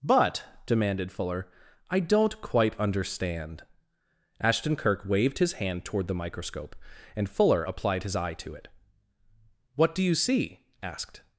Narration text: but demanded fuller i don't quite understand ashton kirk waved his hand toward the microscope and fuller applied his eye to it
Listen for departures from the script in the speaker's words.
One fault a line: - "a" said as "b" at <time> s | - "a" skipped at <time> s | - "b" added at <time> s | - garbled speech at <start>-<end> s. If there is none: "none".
- "what do you see asked" added at 9.8 s